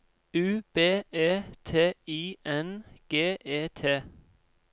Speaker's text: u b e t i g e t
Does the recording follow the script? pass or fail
fail